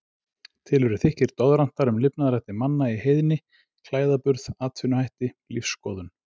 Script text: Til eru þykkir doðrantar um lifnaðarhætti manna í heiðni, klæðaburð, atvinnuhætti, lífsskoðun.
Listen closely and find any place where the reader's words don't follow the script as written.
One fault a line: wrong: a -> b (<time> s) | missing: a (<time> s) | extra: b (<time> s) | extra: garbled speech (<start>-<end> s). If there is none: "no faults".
no faults